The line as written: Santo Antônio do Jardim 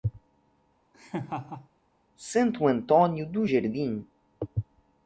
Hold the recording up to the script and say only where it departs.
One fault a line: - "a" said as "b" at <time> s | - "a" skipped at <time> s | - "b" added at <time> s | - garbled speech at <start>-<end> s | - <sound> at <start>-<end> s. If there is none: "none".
- laugh at 0.9-1.7 s